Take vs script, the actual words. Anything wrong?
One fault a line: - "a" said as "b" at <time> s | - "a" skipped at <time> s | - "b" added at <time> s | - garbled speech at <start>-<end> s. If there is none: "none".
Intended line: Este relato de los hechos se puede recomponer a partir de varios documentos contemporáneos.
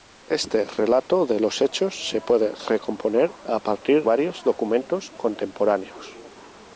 - "de" skipped at 4.0 s